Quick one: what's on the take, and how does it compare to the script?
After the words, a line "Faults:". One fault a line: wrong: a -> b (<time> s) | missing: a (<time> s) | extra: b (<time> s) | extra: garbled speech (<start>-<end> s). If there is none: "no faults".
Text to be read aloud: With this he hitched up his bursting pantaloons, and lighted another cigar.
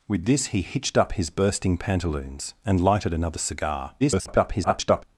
With this he hitched up his bursting pantaloons, and lighted another cigar. [garbled]
Faults:
extra: garbled speech (4.0-5.0 s)